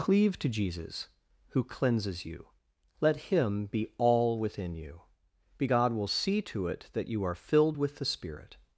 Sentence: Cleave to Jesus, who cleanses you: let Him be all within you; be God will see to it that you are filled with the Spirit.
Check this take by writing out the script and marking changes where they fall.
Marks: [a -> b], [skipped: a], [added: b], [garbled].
Cleave to Jesus, who cleanses you: let Him be all within you; be God will see to it that you are filled with the Spirit.